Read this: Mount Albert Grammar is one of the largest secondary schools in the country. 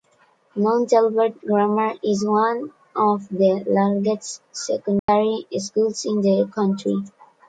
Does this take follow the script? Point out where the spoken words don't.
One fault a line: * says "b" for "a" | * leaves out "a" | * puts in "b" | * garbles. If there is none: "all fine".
all fine